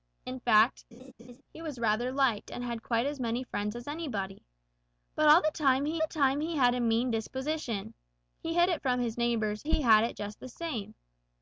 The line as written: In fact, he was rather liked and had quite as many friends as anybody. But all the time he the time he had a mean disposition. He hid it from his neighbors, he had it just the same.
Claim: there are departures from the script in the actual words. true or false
false